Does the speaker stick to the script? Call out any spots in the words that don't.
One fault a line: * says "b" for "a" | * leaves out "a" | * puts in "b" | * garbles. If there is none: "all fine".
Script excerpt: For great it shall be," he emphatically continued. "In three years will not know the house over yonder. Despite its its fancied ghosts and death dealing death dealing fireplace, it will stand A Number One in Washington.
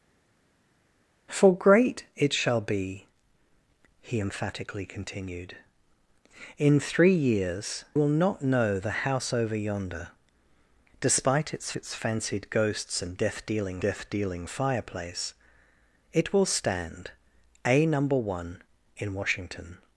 all fine